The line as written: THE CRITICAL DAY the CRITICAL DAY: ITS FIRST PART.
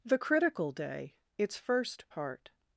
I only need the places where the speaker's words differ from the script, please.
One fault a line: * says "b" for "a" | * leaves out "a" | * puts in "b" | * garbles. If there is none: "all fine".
* leaves out "the CRITICAL DAY"